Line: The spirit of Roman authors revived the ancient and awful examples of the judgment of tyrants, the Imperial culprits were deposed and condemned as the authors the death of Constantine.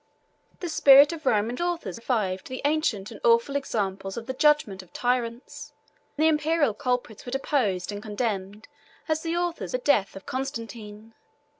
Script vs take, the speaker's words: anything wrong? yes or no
no